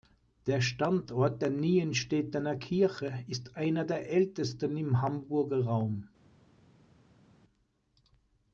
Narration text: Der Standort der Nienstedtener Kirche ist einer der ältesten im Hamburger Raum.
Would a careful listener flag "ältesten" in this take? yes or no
no